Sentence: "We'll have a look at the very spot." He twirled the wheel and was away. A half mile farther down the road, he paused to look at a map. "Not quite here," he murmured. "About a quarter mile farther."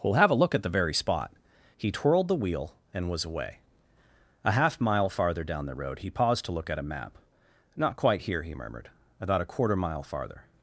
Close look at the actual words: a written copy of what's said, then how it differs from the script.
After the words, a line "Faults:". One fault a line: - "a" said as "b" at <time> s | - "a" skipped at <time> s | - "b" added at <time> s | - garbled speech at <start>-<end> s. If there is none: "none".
"We'll have a look at the very spot." He twirled the wheel and was away. A half mile farther down the road, he paused to look at a map. "Not quite here," he murmured. "About a quarter mile farther."
Faults:
none